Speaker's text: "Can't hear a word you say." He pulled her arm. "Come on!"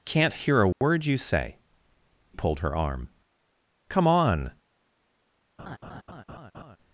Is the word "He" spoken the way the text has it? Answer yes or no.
no